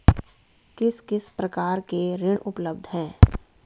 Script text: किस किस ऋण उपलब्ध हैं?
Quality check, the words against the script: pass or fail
fail